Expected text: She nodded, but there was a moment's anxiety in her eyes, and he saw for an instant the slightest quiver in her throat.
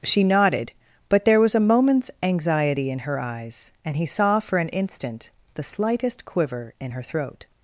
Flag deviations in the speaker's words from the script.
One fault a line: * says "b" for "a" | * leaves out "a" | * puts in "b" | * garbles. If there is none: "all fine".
all fine